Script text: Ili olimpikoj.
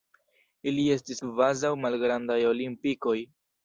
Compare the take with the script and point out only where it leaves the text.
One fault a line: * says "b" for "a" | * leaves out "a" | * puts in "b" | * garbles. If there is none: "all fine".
* puts in "estis kvazaŭ malgrandaj"